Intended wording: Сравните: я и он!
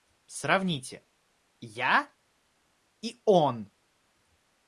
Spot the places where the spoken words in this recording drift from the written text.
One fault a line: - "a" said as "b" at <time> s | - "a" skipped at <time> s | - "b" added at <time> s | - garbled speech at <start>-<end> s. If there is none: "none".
none